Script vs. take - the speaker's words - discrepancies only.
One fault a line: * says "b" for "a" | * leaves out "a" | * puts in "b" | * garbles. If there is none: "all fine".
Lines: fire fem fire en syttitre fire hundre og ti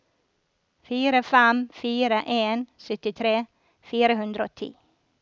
all fine